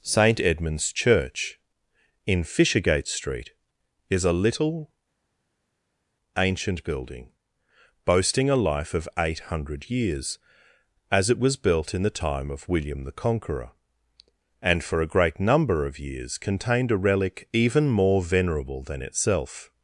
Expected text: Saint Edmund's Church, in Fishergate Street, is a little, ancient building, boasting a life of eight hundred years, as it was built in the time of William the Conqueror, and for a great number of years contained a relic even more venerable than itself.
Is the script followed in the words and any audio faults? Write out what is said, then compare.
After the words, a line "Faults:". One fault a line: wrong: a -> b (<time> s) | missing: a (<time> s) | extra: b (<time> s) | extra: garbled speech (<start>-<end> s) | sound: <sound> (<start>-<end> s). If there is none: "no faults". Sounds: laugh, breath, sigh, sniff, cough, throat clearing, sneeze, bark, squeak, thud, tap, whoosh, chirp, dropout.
Saint Edmund's Church, in Fishergate Street, is a little, ancient building, boasting a life of eight hundred years, as it was built in the time of William the Conqueror, and for a great number of years contained a relic even more venerable than itself.
Faults:
no faults